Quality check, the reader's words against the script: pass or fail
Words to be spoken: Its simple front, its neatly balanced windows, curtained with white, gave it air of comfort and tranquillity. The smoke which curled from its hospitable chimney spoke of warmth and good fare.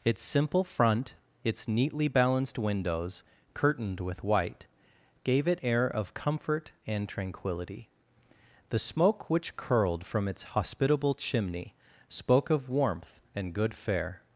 pass